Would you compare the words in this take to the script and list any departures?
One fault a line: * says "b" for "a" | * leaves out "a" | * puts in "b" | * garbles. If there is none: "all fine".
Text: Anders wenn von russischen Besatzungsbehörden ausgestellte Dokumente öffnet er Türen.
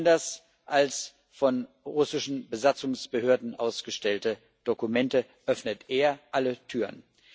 * says "als" for "wenn"
* puts in "alle"